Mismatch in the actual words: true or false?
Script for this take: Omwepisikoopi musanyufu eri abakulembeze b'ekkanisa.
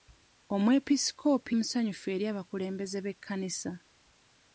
false